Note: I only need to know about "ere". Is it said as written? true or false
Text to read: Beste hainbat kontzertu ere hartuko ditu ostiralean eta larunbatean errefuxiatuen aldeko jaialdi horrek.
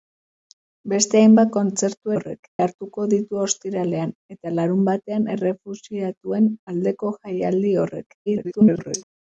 false